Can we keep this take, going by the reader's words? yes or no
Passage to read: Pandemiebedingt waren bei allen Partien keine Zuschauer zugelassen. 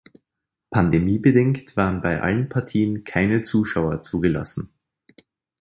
yes